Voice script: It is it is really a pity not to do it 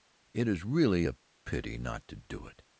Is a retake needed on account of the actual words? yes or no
yes